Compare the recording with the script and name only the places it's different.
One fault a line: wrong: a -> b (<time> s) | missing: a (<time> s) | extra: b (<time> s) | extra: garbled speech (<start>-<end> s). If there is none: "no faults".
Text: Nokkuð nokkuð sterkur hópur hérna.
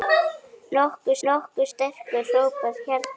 no faults